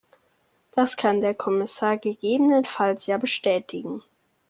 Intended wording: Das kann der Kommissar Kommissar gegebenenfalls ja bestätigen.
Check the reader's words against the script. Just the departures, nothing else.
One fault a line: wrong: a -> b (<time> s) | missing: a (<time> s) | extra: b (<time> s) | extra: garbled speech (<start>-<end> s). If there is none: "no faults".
missing: Kommissar (2.0 s)